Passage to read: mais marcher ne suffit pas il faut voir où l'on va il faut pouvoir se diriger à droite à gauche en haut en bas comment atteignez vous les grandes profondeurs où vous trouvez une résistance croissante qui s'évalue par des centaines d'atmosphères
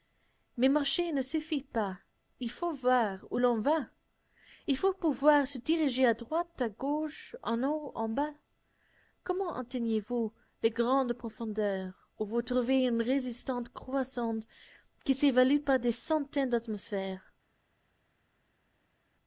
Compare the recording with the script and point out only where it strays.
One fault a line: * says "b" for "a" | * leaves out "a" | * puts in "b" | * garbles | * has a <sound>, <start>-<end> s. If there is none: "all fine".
all fine